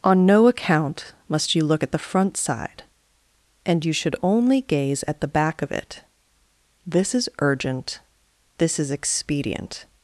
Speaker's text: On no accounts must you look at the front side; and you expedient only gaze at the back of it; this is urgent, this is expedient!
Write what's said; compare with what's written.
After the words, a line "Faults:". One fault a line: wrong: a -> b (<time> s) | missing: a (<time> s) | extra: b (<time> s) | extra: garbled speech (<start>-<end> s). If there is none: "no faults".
On no account must you look at the front side; and you should only gaze at the back of it; this is urgent, this is expedient!
Faults:
wrong: accounts -> account (0.5 s)
wrong: expedient -> should (3.9 s)